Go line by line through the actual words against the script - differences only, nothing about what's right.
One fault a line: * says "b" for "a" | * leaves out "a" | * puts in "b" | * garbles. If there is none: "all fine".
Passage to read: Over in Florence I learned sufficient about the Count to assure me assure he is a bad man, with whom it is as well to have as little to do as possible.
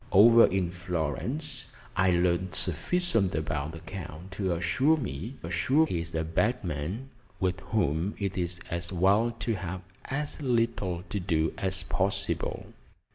all fine